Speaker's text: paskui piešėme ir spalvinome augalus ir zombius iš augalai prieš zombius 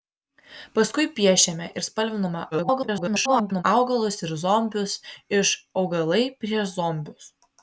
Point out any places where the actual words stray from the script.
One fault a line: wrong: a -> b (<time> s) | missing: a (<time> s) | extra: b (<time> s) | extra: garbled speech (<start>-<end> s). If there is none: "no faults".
extra: garbled speech (2.5-3.6 s)